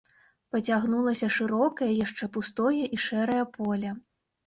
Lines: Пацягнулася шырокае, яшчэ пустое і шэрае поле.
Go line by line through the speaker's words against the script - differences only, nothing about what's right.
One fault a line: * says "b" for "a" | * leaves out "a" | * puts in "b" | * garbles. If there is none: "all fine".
all fine